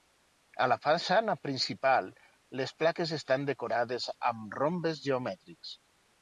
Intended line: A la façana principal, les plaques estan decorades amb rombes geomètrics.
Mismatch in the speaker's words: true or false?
false